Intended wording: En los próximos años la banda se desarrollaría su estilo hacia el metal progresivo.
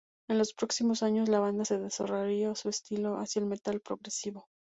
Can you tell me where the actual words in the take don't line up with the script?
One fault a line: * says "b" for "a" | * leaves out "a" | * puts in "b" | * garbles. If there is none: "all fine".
all fine